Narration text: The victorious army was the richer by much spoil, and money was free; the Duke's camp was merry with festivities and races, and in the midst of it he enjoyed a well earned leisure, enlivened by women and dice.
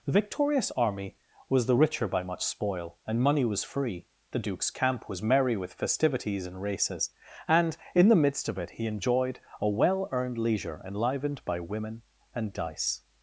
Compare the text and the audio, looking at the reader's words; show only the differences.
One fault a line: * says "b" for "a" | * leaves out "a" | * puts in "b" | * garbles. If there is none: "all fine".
all fine